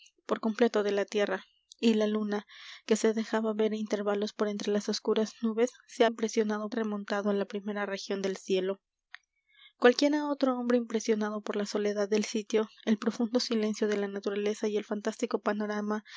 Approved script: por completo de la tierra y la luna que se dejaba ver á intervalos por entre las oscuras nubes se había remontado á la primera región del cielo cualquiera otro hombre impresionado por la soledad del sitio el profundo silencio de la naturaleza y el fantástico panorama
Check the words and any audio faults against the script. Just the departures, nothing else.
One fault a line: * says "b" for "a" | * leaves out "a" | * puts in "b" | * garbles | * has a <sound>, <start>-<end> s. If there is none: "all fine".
* says "impresionado" for "había"